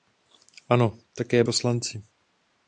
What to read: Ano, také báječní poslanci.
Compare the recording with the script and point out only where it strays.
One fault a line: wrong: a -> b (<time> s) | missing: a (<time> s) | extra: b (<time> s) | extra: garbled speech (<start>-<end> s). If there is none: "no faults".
missing: báječní (1.4 s)